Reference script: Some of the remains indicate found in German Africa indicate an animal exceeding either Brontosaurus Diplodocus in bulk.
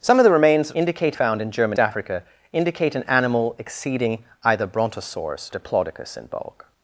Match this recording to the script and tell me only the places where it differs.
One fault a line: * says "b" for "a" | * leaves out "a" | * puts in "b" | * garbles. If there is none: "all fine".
all fine